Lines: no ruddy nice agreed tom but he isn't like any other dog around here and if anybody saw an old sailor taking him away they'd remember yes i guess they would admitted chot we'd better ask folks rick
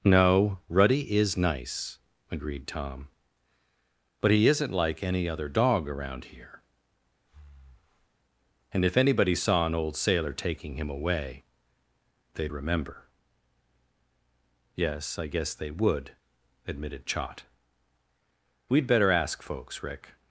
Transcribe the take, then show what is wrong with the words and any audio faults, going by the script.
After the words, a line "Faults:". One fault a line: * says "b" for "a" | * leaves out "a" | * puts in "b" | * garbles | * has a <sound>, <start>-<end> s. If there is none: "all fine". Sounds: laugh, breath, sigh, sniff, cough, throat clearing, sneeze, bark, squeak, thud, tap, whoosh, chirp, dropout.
no ruddy is nice agreed tom but he isn't like any other dog around here and if anybody saw an old sailor taking him away they'd remember yes i guess they would admitted chot we'd better ask folks rick
Faults:
* puts in "is"
* has a breath, 7.2-8.2 s